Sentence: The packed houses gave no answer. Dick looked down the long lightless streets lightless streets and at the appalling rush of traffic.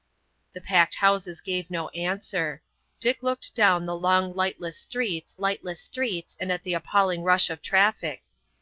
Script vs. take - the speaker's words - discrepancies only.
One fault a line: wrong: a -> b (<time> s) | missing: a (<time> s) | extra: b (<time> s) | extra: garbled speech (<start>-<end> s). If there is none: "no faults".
no faults